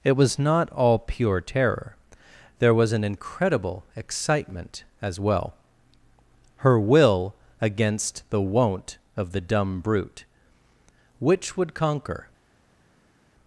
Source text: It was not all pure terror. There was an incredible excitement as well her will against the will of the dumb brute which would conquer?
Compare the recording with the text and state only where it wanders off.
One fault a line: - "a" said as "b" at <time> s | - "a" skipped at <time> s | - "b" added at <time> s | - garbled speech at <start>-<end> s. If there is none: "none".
- "will" said as "won't" at 8.4 s